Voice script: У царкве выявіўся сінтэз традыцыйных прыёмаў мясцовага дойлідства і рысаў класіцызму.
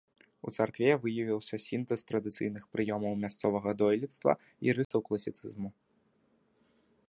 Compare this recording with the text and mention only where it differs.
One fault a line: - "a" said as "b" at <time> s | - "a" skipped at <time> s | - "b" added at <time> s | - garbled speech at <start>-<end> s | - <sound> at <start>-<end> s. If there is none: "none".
- dropout at 4.8-4.9 s